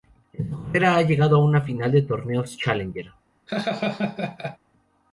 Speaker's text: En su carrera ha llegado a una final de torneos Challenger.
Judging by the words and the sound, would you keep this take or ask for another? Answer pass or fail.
fail